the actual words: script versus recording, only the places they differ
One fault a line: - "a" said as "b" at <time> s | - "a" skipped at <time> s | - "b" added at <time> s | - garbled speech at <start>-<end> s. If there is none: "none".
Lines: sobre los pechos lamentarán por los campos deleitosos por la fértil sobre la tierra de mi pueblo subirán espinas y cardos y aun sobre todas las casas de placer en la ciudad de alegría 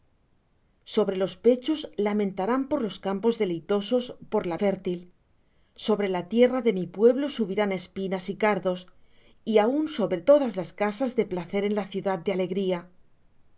none